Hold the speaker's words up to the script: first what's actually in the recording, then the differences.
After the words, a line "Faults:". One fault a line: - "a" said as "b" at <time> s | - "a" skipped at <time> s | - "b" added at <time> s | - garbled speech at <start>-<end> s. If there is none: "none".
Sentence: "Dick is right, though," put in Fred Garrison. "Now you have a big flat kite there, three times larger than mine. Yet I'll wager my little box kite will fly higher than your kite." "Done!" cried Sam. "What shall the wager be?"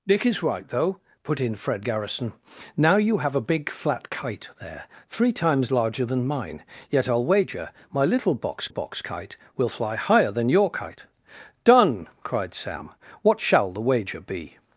"Dick is right, though," put in Fred Garrison. "Now you have a big flat kite there, three times larger than mine. Yet I'll wager my little box box kite will fly higher than your kite." "Done!" cried Sam. "What shall the wager be?"
Faults:
- "box" added at 8.7 s